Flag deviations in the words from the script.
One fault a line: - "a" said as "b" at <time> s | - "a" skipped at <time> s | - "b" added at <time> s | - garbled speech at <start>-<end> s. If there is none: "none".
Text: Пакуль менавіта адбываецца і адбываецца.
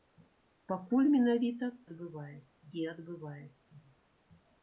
none